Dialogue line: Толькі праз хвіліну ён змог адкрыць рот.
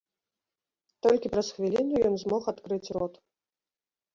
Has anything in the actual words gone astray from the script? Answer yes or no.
no